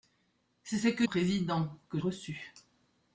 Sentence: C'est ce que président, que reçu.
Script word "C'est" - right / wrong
right